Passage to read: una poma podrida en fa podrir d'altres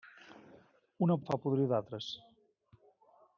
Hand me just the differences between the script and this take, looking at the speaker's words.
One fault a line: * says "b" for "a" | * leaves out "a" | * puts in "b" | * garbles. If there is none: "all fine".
* leaves out "poma podrida"